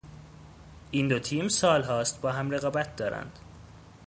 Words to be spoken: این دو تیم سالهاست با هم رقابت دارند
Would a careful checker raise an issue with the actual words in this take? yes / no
no